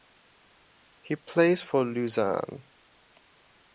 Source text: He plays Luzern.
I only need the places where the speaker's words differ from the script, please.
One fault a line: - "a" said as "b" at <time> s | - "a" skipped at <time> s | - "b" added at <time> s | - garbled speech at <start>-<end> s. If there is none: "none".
- "for" added at 1.6 s